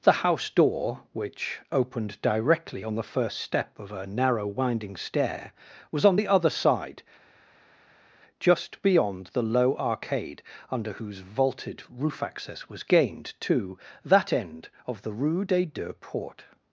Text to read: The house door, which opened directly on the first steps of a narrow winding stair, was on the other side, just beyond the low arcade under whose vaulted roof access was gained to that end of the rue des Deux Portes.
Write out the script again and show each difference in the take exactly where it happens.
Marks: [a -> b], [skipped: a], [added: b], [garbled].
The house door, which opened directly on the first [steps -> step] of a narrow winding stair, was on the other side, just beyond the low arcade under whose vaulted roof access was gained to that end of the rue des Deux Portes.